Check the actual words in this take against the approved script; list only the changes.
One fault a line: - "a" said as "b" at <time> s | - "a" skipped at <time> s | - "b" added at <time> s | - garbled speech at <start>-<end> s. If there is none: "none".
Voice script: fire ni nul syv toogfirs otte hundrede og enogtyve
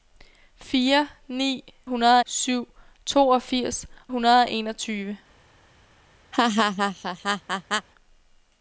- "nul" said as "hundrede" at 1.8 s
- "otte" skipped at 3.9 s